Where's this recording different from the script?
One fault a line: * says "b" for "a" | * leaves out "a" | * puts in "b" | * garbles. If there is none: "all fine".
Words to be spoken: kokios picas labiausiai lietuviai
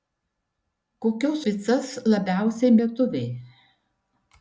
all fine